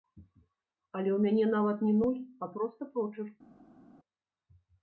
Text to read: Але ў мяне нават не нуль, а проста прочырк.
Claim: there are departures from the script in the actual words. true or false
false